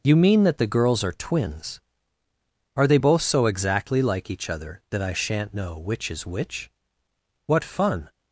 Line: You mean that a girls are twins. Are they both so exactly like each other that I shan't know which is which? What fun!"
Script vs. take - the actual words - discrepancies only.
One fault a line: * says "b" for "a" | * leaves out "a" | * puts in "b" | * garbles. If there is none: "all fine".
* says "the" for "a"